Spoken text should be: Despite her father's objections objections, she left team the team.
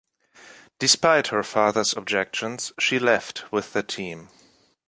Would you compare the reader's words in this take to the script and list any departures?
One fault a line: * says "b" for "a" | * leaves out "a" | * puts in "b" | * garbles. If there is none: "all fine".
* leaves out "objections"
* says "with" for "team"